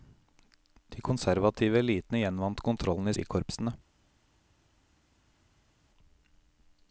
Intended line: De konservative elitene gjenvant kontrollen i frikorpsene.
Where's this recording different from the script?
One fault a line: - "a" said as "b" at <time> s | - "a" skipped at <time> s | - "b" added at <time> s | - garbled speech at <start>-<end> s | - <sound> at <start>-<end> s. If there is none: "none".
none